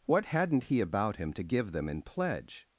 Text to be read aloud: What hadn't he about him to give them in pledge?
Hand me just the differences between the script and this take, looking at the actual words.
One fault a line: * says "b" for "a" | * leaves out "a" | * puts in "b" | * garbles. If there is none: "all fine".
all fine